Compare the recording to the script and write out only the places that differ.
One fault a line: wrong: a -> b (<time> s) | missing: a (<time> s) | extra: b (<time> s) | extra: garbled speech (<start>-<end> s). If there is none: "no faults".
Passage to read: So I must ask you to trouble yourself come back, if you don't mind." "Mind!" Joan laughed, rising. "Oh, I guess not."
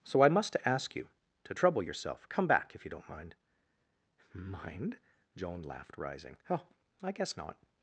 no faults